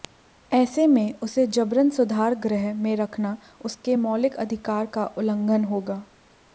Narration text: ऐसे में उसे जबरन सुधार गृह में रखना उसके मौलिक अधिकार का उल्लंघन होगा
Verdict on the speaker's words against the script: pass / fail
pass